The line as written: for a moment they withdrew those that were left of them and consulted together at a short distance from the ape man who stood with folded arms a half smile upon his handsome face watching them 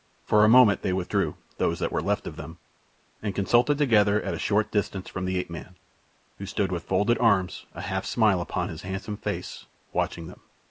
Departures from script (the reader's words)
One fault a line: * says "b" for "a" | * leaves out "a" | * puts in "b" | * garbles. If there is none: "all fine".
all fine